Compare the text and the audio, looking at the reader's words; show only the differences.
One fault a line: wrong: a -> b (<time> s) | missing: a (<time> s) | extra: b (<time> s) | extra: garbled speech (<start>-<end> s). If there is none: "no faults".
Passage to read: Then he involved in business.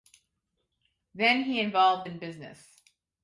no faults